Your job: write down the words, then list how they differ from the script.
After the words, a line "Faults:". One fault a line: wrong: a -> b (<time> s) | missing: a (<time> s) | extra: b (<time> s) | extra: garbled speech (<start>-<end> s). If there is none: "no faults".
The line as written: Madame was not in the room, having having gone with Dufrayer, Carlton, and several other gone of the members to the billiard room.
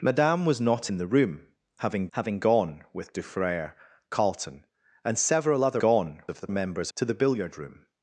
Madame was not in the room, having having gone with Dufrayer, Carlton, and several other gone of the members to the billiard room.
Faults:
no faults